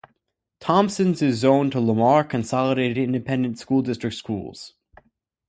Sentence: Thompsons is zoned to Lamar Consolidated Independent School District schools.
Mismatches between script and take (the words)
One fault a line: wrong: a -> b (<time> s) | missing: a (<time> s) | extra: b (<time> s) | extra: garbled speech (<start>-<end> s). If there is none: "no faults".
no faults